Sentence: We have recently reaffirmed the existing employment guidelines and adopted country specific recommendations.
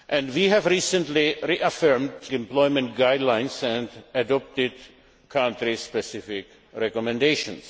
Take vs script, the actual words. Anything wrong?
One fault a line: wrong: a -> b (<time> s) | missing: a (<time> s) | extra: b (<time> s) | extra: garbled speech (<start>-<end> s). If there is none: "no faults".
missing: the existing (2.1 s)